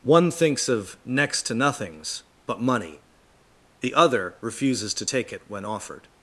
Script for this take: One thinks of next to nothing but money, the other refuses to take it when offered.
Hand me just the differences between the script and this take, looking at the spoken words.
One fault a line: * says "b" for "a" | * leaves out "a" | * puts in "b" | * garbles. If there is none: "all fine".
* says "nothings" for "nothing"